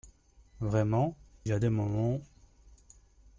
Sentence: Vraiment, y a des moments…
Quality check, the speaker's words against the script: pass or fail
pass